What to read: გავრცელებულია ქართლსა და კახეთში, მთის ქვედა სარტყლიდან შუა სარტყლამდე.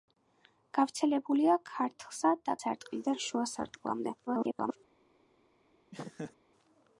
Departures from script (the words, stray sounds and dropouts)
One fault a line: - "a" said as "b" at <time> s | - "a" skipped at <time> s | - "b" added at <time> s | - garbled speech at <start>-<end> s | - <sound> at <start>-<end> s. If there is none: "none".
- "კახეთში მთის ქვედა" skipped at 2.6 s
- garbled speech at 4.3-4.8 s
- laugh at 5.9-6.3 s